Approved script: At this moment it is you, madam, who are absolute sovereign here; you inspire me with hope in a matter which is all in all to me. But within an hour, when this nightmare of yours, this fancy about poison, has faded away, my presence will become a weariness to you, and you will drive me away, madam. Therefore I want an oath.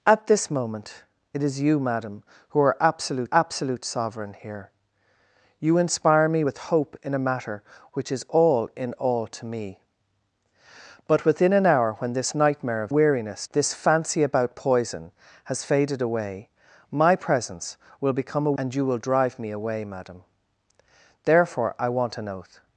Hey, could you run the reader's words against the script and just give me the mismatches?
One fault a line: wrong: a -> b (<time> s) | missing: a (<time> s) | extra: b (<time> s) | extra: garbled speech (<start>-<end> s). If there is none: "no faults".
extra: absolute (3.3 s)
wrong: yours -> weariness (12.9 s)
missing: weariness to you (18.6 s)